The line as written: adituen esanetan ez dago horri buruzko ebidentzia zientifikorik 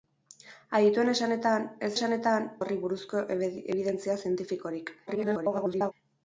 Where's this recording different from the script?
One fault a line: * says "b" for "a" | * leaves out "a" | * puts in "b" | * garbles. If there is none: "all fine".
* says "esanetan" for "dago"
* garbles